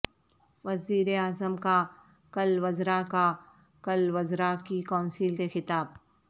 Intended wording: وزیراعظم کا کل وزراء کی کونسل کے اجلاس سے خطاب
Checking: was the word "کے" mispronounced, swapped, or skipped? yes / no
yes